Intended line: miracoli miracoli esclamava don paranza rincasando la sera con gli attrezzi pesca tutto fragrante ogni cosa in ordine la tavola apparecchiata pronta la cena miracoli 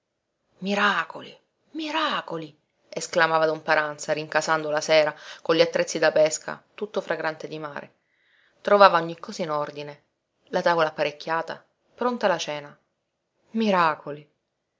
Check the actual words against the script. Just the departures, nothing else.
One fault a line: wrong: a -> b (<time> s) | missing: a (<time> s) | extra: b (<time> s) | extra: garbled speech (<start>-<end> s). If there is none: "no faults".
extra: da (6.0 s)
extra: di mare trovava (7.5 s)